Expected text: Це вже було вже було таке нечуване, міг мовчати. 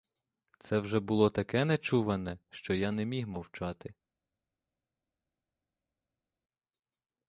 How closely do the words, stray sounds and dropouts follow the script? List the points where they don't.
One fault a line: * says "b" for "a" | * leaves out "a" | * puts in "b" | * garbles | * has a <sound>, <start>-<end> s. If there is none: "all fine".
* says "таке нечуване що я не" for "вже було таке нечуване"